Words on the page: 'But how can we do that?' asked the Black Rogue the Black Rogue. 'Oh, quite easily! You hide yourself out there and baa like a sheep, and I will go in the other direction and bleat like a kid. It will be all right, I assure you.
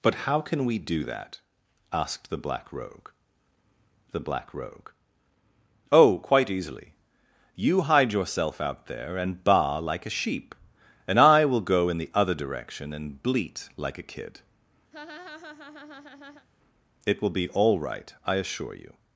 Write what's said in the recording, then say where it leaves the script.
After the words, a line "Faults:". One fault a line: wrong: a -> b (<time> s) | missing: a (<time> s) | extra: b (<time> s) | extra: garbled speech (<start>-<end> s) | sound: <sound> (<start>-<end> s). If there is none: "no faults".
'But how can we do that?' asked the Black Rogue the Black Rogue. 'Oh, quite easily! You hide yourself out there and baa like a sheep, and I will go in the other direction and bleat like a kid. It will be all right, I assure you.
Faults:
sound: laugh (14.9-16.5 s)